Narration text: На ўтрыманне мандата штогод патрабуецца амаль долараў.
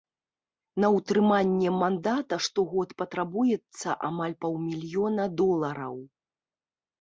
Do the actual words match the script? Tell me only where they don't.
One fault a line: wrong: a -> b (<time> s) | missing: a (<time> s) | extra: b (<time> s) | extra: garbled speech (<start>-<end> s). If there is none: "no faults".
extra: паўмільёна (4.5 s)